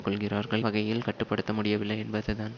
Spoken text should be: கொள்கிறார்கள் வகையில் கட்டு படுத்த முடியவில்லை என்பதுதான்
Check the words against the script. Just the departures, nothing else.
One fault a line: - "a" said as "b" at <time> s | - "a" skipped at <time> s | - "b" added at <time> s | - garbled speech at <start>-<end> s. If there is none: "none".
none